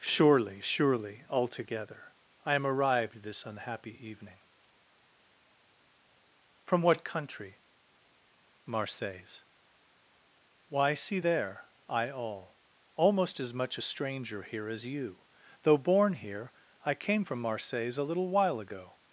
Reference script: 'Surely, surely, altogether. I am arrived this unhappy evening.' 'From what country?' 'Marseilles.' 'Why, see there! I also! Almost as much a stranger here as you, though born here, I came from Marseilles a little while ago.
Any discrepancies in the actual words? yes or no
yes